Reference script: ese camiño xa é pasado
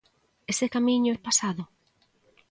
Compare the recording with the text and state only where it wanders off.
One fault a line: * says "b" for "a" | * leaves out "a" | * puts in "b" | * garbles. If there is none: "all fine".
* leaves out "xa"